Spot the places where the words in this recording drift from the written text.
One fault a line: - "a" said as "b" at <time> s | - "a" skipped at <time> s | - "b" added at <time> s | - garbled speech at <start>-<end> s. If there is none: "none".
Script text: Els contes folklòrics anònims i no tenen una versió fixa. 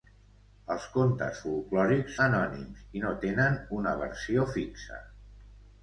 none